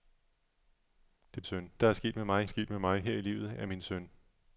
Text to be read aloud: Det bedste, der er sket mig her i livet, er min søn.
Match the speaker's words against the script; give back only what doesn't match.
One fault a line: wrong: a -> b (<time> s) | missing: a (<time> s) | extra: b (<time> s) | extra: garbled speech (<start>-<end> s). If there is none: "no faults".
wrong: bedste -> søn (1.4 s)
extra: sket mig (2.4 s)